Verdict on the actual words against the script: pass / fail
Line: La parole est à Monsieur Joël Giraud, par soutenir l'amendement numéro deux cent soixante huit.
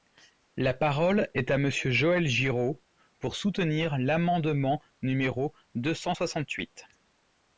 fail